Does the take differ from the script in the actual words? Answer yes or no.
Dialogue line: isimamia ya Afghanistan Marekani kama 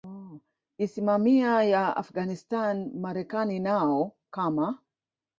yes